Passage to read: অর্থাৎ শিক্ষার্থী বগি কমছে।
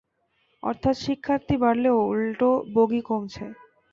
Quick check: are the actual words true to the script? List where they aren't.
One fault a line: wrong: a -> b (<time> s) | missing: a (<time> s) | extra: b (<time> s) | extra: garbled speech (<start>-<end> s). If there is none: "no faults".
extra: বাড়লেও উল্টো (1.6 s)